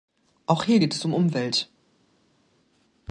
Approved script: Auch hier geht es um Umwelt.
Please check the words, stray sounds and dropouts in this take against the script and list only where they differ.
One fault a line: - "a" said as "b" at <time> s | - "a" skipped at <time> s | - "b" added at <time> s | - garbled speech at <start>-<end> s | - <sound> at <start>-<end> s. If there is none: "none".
none